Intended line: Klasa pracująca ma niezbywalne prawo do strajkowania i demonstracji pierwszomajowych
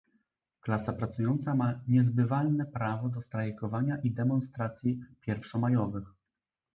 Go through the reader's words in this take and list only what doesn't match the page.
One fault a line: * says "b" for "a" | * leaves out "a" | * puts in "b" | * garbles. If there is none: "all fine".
all fine